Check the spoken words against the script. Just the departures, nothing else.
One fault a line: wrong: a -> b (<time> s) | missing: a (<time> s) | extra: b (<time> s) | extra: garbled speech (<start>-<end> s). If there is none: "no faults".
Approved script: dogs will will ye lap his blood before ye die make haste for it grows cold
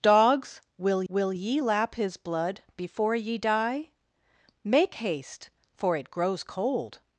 no faults